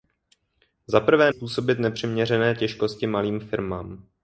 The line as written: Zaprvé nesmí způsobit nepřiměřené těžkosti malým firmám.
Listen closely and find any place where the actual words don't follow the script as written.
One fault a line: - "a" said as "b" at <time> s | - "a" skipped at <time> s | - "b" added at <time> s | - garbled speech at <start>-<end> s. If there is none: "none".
- "nesmí" skipped at 1.3 s